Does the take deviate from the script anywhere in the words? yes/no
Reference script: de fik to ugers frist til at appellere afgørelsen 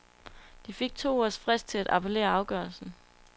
no